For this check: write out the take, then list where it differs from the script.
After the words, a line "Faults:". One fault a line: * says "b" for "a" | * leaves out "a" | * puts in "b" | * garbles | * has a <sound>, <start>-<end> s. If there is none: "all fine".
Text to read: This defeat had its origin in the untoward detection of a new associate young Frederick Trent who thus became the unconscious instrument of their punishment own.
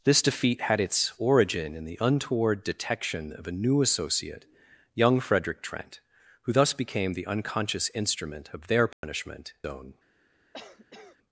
This defeat had its origin in the untoward detection of a new associate young Frederick Trent who thus became the unconscious instrument of their punishment own.
Faults:
* has a dropout, 8.9-9.0 s
* has a cough, 10.5-11.2 s